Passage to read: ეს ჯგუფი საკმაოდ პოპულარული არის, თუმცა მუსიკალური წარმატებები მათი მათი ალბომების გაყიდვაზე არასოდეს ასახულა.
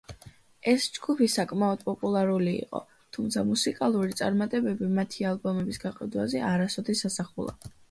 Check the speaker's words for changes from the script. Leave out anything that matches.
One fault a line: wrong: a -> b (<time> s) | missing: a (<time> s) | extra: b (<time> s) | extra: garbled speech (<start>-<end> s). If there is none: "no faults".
wrong: არის -> იყო (2.6 s)
missing: მათი (5.3 s)